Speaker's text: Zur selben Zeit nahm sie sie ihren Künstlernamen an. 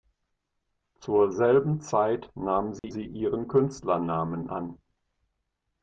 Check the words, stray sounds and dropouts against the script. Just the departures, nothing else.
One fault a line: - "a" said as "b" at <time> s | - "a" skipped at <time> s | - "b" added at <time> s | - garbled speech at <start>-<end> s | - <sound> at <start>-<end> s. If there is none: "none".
- dropout at 2.8-2.8 s